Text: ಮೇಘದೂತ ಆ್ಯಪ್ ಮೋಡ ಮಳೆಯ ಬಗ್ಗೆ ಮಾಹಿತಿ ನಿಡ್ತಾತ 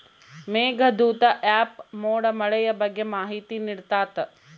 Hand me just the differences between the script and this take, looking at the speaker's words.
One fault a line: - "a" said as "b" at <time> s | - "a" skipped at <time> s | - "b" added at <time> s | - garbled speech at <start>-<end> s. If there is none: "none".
none